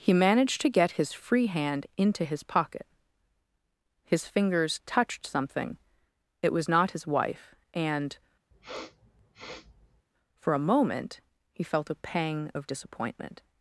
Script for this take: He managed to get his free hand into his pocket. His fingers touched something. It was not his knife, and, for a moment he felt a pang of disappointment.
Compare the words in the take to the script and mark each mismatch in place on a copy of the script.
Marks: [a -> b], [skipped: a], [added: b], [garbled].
He managed to get his free hand into his pocket. His fingers touched something. It was not his [knife, -> wife] and, for a moment he felt a pang of disappointment.